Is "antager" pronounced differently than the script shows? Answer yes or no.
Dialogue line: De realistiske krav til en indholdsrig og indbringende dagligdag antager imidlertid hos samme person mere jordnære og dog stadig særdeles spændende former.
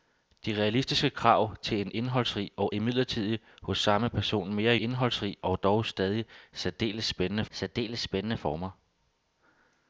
yes